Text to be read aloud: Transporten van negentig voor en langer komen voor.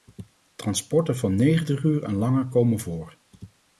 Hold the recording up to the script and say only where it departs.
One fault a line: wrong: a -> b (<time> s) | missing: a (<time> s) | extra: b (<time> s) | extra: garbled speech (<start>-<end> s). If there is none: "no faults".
wrong: voor -> uur (1.8 s)